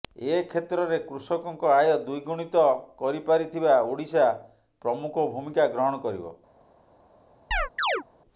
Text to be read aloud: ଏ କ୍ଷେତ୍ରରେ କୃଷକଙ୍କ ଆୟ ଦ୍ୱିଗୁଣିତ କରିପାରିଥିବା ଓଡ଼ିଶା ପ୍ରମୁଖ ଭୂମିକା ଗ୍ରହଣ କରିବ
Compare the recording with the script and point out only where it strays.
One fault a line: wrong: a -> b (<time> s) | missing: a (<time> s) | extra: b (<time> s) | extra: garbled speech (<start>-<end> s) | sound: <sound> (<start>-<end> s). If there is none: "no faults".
sound: chirp (7.5-8.0 s)